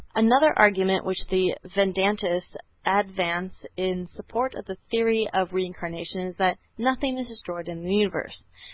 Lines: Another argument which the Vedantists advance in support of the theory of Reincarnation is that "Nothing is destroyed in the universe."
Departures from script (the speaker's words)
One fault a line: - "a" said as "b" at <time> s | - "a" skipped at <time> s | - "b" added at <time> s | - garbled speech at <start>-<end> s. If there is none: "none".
none